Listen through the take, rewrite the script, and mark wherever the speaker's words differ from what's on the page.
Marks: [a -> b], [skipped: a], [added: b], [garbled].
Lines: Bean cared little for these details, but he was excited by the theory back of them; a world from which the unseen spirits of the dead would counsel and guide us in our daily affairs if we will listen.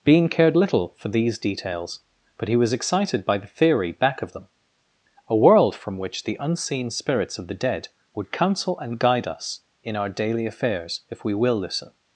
Bean cared little for these details, but he was excited by the theory back of them; a world from which the unseen spirits of the dead would counsel and guide us in our daily affairs if we will listen.